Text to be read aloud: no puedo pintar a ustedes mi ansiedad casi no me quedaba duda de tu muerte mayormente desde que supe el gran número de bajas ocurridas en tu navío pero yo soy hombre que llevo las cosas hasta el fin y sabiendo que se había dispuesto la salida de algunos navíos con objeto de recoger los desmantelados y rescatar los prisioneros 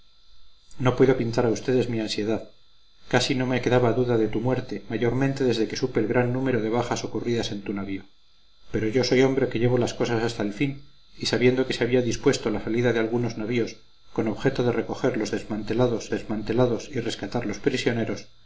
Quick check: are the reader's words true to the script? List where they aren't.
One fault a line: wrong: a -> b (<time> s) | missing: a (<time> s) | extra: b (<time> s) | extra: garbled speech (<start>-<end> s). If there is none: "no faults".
extra: desmantelados (16.1 s)